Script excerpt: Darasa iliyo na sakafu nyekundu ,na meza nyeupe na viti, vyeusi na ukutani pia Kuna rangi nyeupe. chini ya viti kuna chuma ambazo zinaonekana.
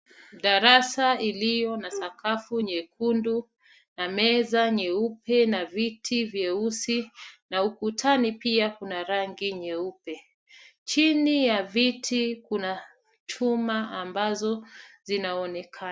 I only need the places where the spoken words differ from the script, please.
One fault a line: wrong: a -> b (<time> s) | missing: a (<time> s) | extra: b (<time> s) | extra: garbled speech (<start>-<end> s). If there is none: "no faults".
no faults